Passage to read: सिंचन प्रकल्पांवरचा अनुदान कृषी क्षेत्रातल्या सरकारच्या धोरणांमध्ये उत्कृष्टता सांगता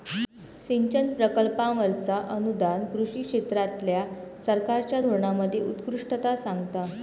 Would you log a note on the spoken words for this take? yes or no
no